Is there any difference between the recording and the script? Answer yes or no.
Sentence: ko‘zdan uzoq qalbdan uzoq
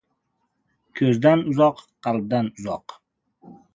no